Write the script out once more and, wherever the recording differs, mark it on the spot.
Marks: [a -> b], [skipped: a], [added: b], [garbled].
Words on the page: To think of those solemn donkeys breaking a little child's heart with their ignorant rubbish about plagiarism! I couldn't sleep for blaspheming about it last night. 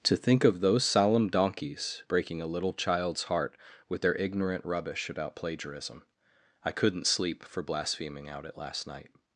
To think of those solemn donkeys breaking a little child's heart with their ignorant rubbish about plagiarism! I couldn't sleep for blaspheming [about -> out] it last night.